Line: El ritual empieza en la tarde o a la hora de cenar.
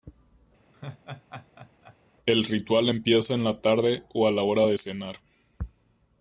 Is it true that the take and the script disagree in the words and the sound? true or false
true